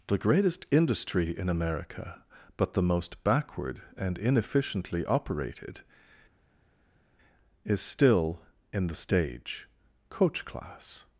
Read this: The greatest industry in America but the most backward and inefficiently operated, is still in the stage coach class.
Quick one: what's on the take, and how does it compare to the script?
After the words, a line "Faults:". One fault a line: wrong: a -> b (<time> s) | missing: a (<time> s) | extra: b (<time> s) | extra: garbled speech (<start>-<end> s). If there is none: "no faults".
The greatest industry in America but the most backward and inefficiently operated, is still in the stage coach class.
Faults:
no faults